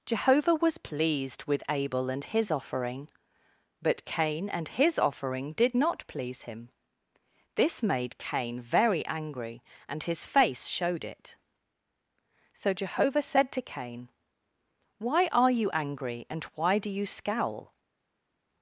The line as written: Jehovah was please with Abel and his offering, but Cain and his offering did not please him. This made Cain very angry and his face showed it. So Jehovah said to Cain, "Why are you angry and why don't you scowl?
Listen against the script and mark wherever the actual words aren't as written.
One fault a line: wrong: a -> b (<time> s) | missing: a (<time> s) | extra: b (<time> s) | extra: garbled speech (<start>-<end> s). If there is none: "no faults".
wrong: please -> pleased (0.8 s)
wrong: don't -> do (16.8 s)